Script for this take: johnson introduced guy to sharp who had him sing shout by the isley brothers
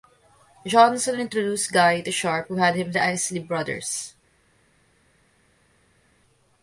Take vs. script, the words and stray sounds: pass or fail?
fail